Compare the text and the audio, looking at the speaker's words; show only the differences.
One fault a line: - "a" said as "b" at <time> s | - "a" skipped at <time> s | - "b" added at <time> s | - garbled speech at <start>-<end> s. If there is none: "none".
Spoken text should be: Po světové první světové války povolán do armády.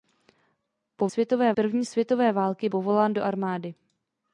none